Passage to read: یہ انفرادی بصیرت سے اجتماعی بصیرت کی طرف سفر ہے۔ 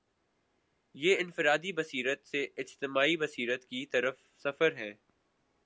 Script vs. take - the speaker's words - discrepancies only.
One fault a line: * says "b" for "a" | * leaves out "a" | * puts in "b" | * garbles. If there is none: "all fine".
all fine